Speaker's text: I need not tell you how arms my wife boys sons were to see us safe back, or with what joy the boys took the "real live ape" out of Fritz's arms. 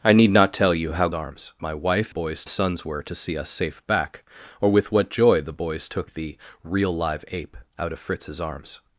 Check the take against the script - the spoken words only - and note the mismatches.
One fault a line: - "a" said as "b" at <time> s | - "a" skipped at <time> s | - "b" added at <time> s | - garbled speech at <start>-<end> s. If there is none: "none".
none